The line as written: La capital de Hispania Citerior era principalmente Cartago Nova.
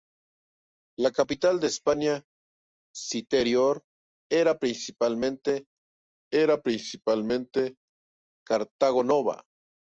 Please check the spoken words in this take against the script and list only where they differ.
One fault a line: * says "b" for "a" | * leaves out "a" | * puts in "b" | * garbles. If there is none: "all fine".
* puts in "era principalmente"